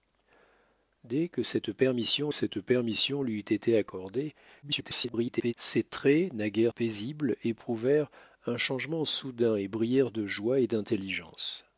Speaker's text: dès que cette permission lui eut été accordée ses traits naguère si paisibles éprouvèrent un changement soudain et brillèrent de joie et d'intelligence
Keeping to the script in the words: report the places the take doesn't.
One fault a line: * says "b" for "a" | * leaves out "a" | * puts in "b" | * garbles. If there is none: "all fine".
* puts in "cette permission"
* garbles
* leaves out "si"